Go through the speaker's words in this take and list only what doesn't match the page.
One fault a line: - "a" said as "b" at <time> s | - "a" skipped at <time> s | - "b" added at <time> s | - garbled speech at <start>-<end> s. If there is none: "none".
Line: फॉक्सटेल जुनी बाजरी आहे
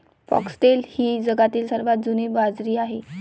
- "ही जगातील सर्वात" added at 0.9 s